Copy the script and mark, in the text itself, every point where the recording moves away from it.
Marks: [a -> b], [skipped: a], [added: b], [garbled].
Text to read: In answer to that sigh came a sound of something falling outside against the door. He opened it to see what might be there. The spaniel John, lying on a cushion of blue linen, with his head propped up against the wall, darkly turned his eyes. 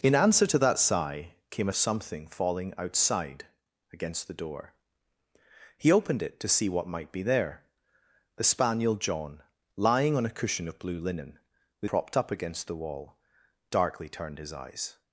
In answer to that sigh came [skipped: a sound of] something falling outside against the door. He opened it to see what might be there. The spaniel John, lying on a cushion of blue linen, with [skipped: his head] propped up against the wall, darkly turned his eyes.